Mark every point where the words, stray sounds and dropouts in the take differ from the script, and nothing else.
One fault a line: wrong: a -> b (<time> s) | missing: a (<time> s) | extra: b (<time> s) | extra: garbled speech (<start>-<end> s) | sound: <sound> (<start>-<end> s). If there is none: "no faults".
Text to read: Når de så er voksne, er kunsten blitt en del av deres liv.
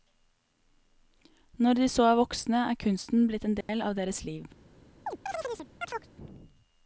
sound: dropout (3.6-3.7 s)
sound: chirp (5.1-6.1 s)